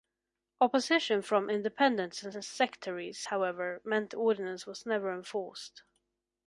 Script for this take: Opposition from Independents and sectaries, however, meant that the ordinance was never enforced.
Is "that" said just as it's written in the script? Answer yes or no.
no